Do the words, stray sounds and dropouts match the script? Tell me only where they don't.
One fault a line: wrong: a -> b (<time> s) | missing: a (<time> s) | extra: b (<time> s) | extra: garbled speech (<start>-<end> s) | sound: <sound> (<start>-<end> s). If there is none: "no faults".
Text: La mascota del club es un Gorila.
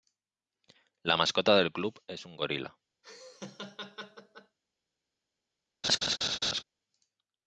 sound: laugh (3.0-4.6 s)
sound: laugh (5.8-6.6 s)